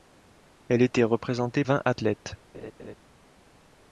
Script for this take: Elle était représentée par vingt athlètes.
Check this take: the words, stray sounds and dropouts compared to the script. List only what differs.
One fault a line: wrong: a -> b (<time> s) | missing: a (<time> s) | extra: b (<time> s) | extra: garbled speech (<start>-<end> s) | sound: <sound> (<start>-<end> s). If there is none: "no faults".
missing: par (1.6 s)
sound: laugh (2.5-2.9 s)